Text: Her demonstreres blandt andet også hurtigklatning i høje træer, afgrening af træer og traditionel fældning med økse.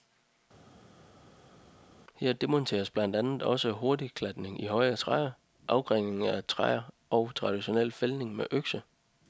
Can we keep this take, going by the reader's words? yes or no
yes